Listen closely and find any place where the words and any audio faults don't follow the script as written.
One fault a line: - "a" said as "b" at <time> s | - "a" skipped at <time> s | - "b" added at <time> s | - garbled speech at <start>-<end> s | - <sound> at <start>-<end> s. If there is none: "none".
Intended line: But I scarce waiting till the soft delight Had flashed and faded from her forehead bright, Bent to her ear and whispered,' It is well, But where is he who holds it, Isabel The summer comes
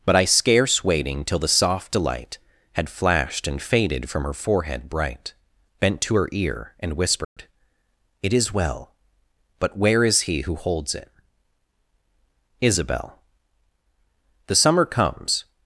- dropout at 7.2-7.4 s